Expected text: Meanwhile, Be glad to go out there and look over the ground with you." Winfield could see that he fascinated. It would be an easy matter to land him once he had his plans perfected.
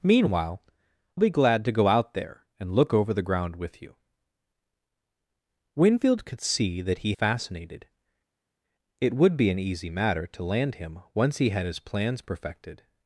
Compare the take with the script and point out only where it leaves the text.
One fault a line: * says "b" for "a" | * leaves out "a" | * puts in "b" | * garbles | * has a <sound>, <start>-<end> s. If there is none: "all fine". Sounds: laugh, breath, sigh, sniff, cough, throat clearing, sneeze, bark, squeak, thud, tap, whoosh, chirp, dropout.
all fine